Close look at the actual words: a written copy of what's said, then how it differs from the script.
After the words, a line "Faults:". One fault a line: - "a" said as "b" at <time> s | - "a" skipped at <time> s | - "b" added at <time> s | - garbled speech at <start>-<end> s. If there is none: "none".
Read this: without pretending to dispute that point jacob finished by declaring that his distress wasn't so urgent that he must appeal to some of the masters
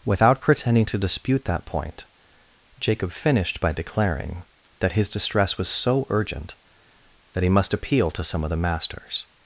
without pretending to dispute that point jacob finished by declaring that his distress was so urgent that he must appeal to some of the masters
Faults:
- "wasn't" said as "was" at 5.6 s